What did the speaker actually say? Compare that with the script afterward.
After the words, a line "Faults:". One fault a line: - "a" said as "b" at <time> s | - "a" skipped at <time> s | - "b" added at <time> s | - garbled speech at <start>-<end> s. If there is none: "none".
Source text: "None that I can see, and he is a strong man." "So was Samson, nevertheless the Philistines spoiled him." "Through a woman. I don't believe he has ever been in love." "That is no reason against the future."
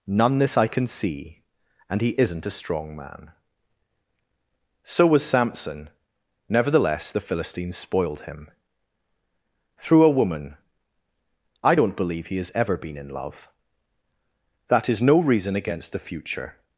"None this I can see, and he isn't a strong man." "So was Samson, nevertheless the Philistines spoiled him." "Through a woman. I don't believe he has ever been in love." "That is no reason against the future."
Faults:
- "that" said as "this" at 0.4 s
- "is" said as "isn't" at 2.2 s